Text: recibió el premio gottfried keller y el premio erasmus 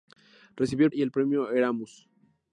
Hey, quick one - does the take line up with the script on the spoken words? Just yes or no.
no